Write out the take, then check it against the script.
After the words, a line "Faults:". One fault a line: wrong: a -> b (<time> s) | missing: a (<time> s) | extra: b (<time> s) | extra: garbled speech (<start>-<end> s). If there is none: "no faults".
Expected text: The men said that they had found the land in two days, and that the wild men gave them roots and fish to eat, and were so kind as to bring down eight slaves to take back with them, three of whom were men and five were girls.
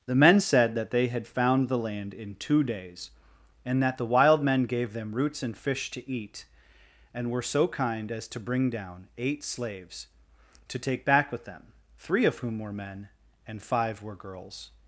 The men said that they had found the land in two days, and that the wild men gave them roots and fish to eat, and were so kind as to bring down eight slaves to take back with them, three of whom were men and five were girls.
Faults:
no faults